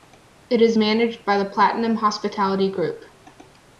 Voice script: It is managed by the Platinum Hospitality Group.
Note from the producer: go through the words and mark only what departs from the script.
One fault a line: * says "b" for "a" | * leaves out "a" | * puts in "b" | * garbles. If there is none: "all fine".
all fine